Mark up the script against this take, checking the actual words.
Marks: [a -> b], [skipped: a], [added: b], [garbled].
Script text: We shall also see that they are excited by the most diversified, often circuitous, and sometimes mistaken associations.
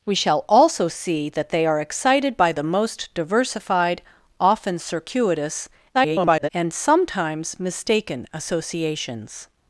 We shall also see that they are excited by the most diversified, often circuitous, [garbled] and sometimes mistaken associations.